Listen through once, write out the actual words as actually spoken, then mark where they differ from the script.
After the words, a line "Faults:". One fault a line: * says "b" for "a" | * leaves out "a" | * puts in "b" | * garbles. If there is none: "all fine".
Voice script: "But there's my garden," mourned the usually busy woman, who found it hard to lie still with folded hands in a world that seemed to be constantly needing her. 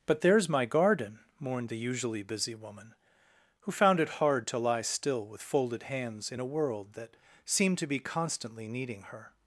"But there's my garden," mourned the usually busy woman, who found it hard to lie still with folded hands in a world that seemed to be constantly needing her.
Faults:
all fine